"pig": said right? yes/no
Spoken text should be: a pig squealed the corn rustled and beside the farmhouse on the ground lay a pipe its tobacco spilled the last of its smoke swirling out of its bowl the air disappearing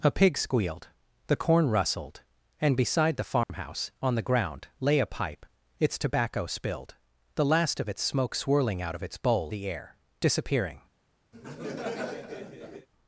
yes